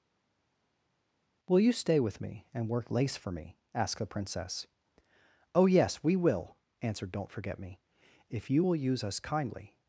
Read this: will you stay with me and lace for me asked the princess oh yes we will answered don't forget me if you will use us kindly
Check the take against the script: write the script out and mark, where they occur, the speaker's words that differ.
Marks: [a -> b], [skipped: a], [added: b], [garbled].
will you stay with me and [added: work] lace for me asked the princess oh yes we will answered don't forget me if you will use us kindly